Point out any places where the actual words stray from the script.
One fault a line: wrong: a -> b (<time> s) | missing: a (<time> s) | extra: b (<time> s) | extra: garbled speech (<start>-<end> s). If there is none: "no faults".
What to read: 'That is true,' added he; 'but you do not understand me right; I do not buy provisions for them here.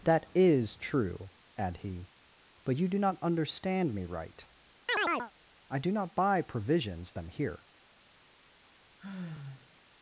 wrong: added -> add (1.6 s)
missing: for (7.1 s)